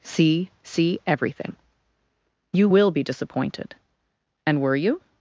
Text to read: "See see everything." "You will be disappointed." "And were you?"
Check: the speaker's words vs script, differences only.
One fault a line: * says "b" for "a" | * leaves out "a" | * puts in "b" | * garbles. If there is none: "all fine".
all fine